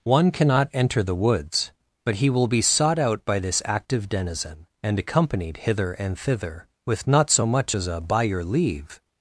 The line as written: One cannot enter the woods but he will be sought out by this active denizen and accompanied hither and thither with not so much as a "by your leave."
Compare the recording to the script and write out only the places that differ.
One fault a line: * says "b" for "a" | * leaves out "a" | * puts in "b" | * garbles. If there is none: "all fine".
all fine